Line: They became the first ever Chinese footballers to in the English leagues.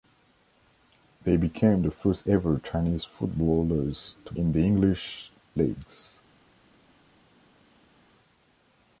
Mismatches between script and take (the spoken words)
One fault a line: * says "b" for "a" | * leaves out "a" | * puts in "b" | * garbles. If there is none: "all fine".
all fine